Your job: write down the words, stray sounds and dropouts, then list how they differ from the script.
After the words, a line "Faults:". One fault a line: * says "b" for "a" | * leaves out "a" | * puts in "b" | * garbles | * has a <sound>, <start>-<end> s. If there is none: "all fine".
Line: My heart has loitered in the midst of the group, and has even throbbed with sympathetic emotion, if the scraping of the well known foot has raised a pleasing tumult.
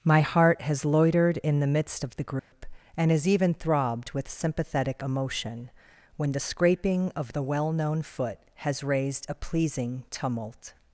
My heart has loitered in the midst of the group, and has even throbbed with sympathetic emotion, when the scraping of the well known foot has raised a pleasing tumult.
Faults:
* has a dropout, 2.4-2.5 s
* says "when" for "if"